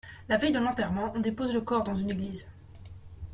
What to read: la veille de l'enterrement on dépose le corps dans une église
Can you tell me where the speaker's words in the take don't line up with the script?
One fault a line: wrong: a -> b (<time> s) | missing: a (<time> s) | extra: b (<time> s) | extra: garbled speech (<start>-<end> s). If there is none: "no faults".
no faults